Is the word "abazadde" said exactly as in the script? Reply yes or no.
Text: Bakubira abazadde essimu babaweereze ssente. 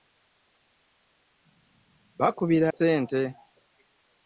no